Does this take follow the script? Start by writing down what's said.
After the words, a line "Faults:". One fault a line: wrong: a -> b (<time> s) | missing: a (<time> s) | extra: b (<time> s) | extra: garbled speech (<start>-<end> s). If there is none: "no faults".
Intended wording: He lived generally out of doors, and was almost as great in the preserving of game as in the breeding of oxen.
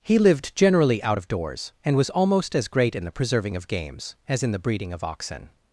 He lived generally out of doors, and was almost as great in the preserving of games as in the breeding of oxen.
Faults:
wrong: game -> games (3.7 s)